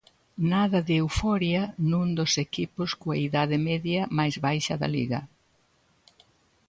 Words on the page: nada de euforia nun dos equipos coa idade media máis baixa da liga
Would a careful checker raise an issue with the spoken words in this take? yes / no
no